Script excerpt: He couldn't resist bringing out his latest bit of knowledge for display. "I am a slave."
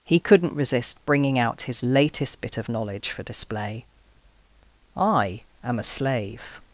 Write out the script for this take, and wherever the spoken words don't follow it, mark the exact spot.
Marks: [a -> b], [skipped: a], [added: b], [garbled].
He couldn't resist bringing out his latest bit of knowledge for display. "I am a slave."